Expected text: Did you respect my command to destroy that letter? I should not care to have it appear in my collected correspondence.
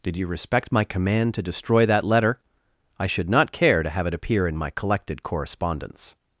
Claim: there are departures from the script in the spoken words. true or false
false